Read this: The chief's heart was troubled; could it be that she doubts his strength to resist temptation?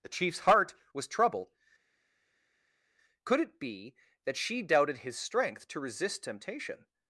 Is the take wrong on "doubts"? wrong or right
wrong